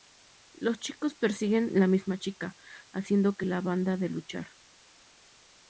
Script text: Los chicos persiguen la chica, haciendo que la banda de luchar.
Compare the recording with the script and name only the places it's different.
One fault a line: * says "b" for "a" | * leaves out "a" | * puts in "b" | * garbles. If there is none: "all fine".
* puts in "misma"